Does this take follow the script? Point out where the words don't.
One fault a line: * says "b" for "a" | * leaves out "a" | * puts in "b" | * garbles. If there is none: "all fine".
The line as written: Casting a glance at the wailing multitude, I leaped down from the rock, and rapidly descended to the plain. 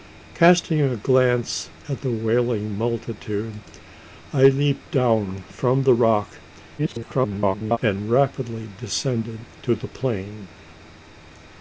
* garbles